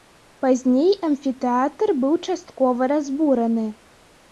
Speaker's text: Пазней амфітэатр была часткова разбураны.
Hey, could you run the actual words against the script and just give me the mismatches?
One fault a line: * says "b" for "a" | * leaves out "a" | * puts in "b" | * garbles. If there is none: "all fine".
* says "быў" for "была"